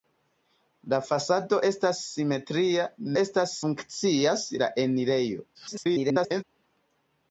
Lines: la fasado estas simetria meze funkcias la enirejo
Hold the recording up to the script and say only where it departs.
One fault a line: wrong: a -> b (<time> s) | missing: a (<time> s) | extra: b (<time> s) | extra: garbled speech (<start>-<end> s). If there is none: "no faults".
wrong: meze -> estas (3.2 s)
extra: garbled speech (5.5-6.4 s)